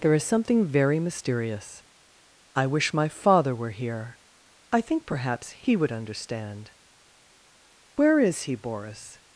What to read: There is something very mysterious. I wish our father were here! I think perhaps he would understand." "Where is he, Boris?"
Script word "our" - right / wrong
wrong